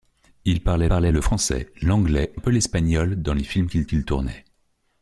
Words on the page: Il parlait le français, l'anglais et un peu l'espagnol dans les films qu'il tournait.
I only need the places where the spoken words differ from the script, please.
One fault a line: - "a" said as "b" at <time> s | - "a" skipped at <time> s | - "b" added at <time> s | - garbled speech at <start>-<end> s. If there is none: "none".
- "parlait" added at 0.9 s
- "et" skipped at 2.3 s
- "qu'il" added at 3.8 s